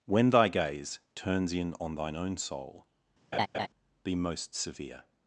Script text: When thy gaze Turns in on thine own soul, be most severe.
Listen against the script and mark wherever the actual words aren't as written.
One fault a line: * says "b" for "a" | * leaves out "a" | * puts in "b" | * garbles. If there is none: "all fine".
all fine